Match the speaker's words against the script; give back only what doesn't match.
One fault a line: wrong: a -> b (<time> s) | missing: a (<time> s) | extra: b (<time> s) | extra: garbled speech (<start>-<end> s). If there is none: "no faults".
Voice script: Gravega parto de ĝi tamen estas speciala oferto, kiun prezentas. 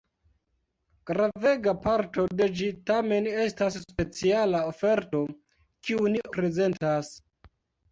no faults